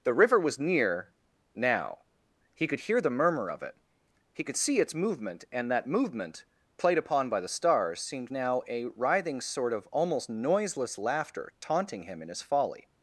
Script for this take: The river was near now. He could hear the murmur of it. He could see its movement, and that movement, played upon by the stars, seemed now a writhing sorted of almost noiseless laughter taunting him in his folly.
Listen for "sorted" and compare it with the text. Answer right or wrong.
wrong